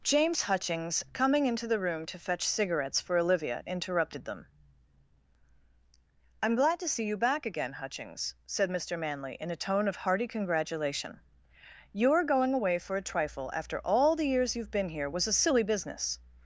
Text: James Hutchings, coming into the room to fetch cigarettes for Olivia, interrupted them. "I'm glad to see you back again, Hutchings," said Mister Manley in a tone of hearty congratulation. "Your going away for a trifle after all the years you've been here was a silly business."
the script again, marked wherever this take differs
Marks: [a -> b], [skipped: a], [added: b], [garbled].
James Hutchings, coming into the room to fetch cigarettes for Olivia, interrupted them. "I'm glad to see you back again, Hutchings," said Mister Manley in a tone of hearty congratulation. "Your going away for a trifle after all the years you've been here was a silly business."